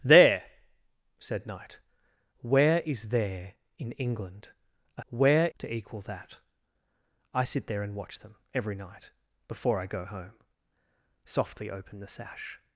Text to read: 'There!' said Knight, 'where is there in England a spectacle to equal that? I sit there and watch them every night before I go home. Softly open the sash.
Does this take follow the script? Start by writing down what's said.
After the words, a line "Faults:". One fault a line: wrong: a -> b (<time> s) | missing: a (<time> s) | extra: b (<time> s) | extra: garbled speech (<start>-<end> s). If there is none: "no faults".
'There!' said Knight, 'where is there in England a where to equal that? I sit there and watch them every night before I go home. Softly open the sash.
Faults:
wrong: spectacle -> where (5.1 s)